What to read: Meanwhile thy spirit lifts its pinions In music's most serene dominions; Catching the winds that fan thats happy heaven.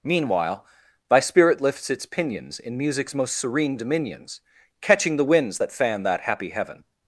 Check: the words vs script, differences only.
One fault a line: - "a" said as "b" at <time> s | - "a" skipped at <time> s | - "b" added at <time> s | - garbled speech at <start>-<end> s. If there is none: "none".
- "thats" said as "that" at 6.0 s